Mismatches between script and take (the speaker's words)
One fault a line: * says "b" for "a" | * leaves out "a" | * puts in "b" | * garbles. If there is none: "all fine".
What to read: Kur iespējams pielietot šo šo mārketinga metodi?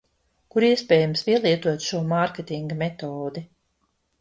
* leaves out "šo"